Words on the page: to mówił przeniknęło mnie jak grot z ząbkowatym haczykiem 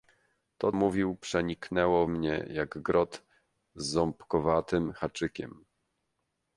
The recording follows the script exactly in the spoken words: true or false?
true